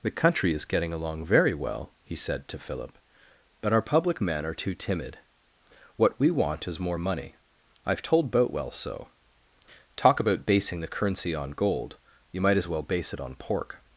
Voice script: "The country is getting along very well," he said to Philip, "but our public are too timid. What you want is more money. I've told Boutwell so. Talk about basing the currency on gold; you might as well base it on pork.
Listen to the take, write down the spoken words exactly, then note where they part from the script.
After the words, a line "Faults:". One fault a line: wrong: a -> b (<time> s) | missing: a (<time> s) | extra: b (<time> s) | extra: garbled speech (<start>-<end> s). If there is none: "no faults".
"The country is getting along very well," he said to Philip, "but our public men are too timid. What we want is more money. I've told Boutwell so. Talk about basing the currency on gold; you might as well base it on pork.
Faults:
extra: men (4.2 s)
wrong: you -> we (6.2 s)